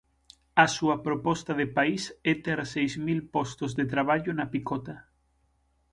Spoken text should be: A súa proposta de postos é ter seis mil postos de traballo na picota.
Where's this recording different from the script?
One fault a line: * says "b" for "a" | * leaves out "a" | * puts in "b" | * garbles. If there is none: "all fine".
* says "país" for "postos"